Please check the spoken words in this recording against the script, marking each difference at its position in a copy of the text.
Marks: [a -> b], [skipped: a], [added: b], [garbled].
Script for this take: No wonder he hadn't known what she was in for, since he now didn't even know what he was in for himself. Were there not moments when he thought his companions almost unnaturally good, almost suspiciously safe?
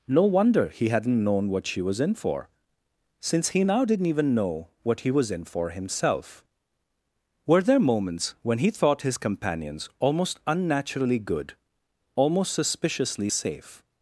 No wonder he hadn't known what she was in for, since he now didn't even know what he was in for himself. Were there [skipped: not] moments when he thought his companions almost unnaturally good, almost suspiciously safe?